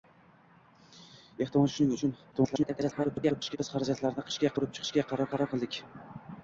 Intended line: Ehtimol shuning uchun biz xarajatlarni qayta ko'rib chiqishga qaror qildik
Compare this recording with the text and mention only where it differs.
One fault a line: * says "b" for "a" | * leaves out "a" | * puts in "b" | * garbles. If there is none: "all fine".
* garbles
* says "chiqishga" for "qayta"
* puts in "qaror"